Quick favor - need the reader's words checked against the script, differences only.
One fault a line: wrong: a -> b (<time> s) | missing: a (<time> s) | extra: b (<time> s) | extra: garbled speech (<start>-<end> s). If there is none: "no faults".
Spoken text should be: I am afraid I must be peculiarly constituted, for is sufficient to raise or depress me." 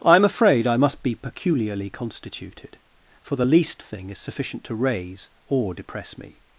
extra: the least thing (3.4 s)